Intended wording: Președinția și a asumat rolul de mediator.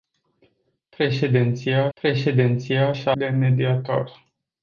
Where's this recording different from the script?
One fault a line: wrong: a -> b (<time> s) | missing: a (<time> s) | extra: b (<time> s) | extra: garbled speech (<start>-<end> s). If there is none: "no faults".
extra: președinția (1.9 s)
missing: asumat rolul (3.1 s)